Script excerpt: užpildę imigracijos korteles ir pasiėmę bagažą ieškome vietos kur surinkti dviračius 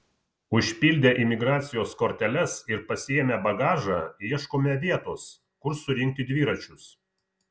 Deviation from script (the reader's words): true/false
false